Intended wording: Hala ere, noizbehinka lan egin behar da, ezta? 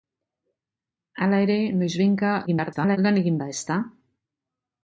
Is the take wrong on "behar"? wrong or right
wrong